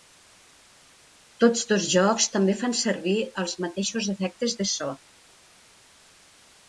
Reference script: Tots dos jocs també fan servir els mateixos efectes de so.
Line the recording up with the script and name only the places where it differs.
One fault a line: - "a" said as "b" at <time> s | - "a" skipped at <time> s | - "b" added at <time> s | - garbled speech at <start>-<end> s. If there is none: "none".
none